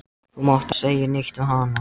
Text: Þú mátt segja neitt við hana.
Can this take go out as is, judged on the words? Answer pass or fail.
pass